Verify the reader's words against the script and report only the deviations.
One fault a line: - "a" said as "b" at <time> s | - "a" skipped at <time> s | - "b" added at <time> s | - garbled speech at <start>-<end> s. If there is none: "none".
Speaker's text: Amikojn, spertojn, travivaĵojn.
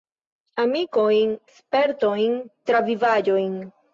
none